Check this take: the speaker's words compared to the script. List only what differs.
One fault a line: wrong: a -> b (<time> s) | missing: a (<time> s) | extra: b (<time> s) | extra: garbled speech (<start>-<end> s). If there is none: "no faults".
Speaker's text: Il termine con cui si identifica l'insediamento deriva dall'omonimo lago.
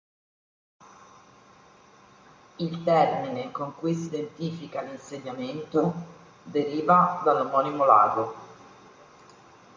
no faults